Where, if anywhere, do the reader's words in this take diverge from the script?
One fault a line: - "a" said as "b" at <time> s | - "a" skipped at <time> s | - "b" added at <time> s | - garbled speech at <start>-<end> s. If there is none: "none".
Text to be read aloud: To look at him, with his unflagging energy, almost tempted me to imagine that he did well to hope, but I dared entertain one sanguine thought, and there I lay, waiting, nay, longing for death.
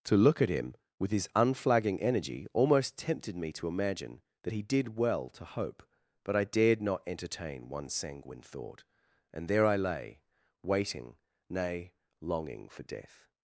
- "not" added at 6.8 s